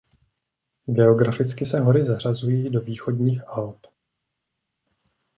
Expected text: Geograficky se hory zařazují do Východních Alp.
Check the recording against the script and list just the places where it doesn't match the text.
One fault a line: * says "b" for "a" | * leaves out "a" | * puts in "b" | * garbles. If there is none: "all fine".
all fine